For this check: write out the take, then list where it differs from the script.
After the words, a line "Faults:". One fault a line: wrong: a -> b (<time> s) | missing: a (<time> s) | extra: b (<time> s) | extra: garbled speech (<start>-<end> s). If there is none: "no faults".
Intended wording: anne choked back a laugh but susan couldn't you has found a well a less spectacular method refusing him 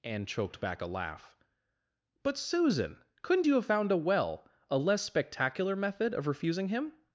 anne choked back a laugh but susan couldn't you have found a well a less spectacular method of refusing him
Faults:
wrong: has -> have (3.6 s)
extra: of (6.1 s)